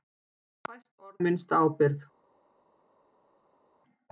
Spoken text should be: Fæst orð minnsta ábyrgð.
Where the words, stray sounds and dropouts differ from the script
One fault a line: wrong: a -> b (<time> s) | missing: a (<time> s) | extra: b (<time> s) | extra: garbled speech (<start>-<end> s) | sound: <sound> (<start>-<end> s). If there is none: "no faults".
no faults